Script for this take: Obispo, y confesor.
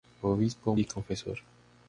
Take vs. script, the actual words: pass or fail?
pass